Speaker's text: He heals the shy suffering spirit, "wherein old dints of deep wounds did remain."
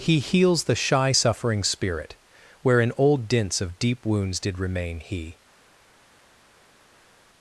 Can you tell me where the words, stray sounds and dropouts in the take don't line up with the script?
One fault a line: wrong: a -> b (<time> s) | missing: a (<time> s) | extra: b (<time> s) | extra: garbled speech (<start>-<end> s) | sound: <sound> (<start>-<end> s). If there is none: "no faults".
extra: He (5.0 s)